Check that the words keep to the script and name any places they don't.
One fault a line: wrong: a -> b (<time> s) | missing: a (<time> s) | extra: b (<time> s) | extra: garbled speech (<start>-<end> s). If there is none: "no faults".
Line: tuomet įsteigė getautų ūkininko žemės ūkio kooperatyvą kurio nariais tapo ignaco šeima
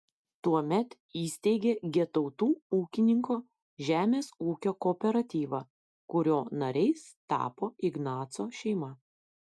no faults